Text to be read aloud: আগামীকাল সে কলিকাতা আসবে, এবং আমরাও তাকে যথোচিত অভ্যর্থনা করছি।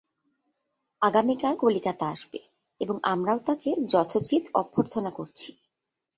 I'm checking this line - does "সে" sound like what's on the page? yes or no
no